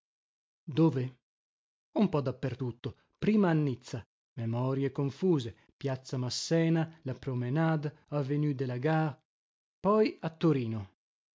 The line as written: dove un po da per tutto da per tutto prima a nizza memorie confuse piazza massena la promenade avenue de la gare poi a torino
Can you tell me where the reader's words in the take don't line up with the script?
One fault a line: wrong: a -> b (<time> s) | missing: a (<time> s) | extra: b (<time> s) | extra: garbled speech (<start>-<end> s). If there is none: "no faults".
missing: da per tutto (3.0 s)